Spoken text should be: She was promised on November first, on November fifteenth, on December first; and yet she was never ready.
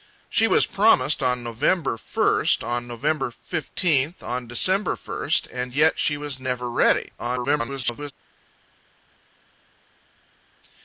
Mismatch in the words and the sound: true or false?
true